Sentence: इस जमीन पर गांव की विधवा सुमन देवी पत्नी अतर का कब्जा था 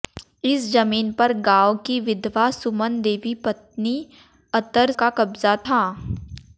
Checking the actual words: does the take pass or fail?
pass